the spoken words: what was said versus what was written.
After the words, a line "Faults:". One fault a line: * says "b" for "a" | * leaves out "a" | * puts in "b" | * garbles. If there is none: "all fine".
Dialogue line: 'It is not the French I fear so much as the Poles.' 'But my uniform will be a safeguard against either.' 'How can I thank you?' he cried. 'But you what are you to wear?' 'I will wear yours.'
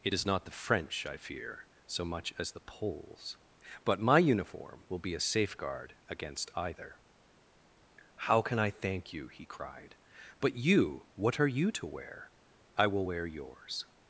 'It is not the French I fear so much as the Poles.' 'But my uniform will be a safeguard against either.' 'How can I thank you?' he cried. 'But you what are you to wear?' 'I will wear yours.'
Faults:
all fine